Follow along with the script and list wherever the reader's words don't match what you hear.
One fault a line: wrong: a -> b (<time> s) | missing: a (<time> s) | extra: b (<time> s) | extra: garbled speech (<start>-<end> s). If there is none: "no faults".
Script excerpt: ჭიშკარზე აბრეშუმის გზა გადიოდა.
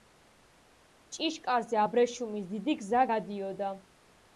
extra: დიდი (2.6 s)